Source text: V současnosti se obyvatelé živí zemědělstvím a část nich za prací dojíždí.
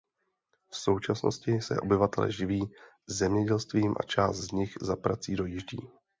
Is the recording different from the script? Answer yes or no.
yes